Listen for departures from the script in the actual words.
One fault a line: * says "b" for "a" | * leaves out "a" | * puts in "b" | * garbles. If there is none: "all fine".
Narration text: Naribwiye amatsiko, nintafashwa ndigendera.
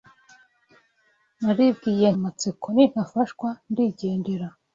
all fine